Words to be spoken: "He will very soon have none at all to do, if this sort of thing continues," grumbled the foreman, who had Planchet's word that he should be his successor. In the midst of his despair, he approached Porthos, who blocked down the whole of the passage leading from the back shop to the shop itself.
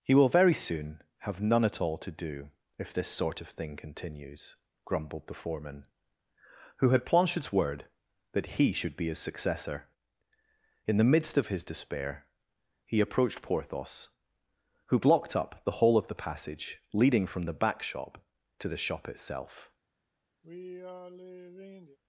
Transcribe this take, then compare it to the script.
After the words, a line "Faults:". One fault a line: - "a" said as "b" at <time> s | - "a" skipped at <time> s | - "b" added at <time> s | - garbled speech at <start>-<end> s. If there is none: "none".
"He will very soon have none at all to do, if this sort of thing continues," grumbled the foreman, who had Planchet's word that he should be his successor. In the midst of his despair, he approached Porthos, who blocked up the whole of the passage leading from the back shop to the shop itself.
Faults:
- "down" said as "up" at 15.3 s